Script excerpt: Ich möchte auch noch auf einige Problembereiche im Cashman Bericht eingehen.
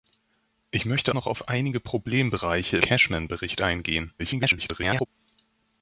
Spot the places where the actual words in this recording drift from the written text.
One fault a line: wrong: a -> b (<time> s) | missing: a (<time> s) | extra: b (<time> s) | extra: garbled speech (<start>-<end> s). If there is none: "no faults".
missing: auch (1.1 s)
missing: im (2.8 s)
extra: garbled speech (4.2-5.1 s)